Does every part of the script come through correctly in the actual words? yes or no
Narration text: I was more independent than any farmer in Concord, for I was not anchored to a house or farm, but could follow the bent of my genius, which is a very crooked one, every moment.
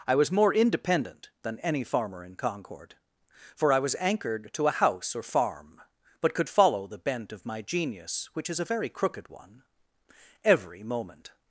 no